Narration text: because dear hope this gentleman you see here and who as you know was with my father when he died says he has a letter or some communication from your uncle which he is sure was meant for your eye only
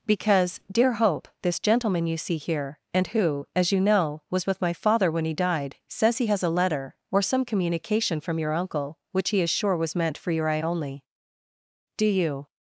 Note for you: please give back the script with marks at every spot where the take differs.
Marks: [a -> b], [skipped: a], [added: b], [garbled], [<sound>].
because dear hope this gentleman you see here and who as you know was with my father when he died says he has a letter or some communication from your uncle which he is sure was meant for your eye only [added: do you]